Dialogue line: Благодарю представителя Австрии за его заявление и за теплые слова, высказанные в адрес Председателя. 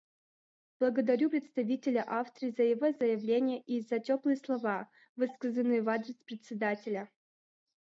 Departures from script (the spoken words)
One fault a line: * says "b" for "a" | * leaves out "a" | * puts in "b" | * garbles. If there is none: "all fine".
all fine